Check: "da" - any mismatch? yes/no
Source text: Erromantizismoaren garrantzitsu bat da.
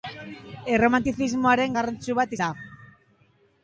no